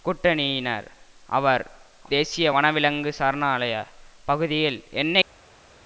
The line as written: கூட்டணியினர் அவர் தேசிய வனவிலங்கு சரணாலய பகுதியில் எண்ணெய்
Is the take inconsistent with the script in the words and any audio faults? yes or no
no